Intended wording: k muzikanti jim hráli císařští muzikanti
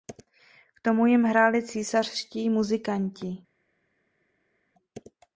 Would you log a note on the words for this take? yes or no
yes